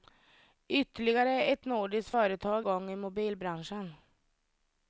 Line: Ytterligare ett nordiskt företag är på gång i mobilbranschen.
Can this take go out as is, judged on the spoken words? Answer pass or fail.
fail